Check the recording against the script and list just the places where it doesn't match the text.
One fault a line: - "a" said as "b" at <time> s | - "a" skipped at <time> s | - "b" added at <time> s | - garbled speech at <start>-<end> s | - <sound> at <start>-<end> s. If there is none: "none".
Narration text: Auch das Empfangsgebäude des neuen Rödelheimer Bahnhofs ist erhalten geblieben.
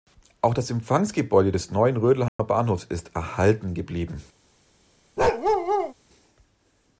- dropout at 2.3-2.4 s
- bark at 5.2-5.9 s